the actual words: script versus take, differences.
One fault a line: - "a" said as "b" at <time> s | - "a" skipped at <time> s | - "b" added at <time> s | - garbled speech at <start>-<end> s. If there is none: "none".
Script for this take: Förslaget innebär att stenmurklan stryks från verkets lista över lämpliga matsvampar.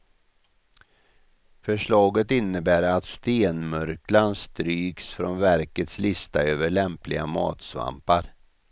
none